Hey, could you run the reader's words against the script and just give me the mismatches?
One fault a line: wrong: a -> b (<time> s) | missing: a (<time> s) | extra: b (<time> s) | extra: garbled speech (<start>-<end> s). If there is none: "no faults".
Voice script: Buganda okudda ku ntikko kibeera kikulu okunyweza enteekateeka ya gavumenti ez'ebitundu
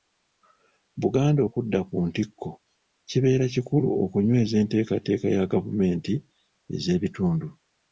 no faults